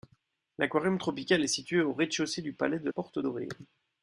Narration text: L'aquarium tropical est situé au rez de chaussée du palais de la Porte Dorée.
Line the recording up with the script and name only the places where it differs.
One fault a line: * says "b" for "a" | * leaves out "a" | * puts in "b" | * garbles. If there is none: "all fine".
* leaves out "la"